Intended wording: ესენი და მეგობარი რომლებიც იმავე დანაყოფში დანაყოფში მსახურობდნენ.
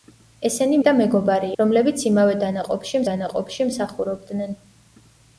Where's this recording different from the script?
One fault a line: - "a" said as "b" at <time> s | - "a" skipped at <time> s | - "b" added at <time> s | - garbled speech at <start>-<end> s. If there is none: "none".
none